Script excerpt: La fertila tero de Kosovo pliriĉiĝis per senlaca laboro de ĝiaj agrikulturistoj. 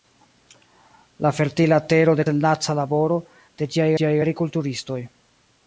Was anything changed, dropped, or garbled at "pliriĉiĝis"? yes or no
yes